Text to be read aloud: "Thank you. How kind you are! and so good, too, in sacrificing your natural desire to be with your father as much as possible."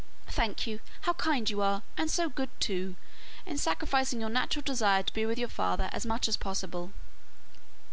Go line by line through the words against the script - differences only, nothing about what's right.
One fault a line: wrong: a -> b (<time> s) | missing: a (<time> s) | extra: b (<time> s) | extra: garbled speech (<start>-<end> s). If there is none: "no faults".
no faults